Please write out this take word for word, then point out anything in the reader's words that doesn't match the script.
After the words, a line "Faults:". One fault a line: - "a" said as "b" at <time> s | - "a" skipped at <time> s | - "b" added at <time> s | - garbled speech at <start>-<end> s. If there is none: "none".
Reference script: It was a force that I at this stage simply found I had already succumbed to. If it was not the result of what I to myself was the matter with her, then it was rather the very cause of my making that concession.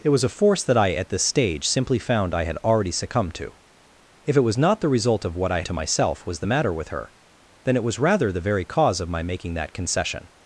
It was a force that I at this stage simply found I had already succumbed to. If it was not the result of what I to myself was the matter with her, then it was rather the very cause of my making that concession.
Faults:
none